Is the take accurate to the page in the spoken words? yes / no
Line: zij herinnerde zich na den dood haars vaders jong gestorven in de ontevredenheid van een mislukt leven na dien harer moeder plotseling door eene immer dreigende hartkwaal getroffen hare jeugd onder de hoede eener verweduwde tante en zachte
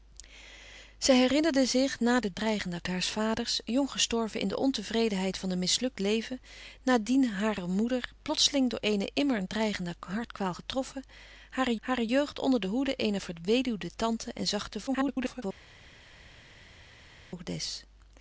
no